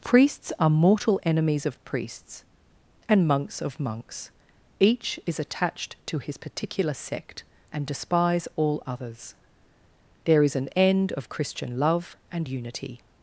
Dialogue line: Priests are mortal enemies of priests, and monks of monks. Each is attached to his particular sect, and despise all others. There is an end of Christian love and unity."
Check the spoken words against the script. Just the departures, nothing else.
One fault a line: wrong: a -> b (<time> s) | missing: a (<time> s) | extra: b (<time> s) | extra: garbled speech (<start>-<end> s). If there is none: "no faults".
no faults